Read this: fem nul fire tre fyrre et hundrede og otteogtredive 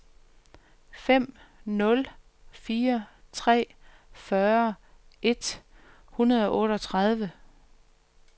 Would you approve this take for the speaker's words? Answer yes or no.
yes